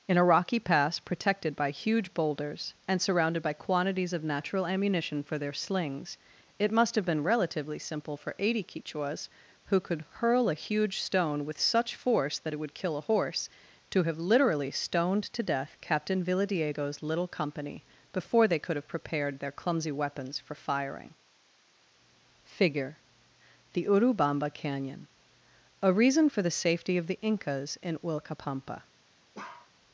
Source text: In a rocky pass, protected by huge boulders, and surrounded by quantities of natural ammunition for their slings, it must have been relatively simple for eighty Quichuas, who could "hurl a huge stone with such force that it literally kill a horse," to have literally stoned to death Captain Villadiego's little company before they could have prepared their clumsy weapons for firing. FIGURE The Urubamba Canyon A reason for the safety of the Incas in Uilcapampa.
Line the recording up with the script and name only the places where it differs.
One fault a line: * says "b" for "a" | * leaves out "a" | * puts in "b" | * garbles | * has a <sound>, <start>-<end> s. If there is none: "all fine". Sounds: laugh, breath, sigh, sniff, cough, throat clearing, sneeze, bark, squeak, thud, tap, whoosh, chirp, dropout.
* says "would" for "literally"
* has a bark, 29.3-29.7 s